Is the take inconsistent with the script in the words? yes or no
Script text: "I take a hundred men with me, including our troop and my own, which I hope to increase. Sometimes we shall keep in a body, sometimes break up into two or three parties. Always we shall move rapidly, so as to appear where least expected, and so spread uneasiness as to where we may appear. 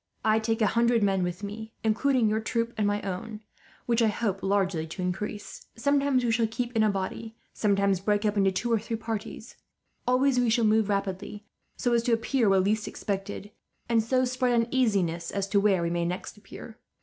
yes